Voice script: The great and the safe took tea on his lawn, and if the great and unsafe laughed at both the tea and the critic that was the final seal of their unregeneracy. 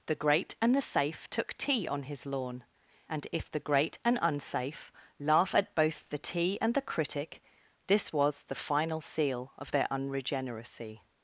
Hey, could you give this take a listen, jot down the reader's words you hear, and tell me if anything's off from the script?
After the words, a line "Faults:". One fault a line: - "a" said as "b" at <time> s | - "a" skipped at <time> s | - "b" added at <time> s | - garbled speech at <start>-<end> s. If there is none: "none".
The great and the safe took tea on his lawn, and if the great and unsafe laugh at both the tea and the critic this was the final seal of their unregeneracy.
Faults:
- "laughed" said as "laugh" at 5.2 s
- "that" said as "this" at 7.9 s